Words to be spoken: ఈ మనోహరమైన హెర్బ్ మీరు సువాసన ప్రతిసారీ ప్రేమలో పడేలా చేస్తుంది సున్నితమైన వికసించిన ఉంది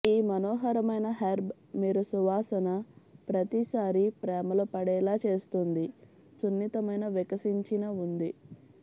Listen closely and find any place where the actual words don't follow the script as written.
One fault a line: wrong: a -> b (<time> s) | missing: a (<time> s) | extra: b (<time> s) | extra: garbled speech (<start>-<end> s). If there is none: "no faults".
no faults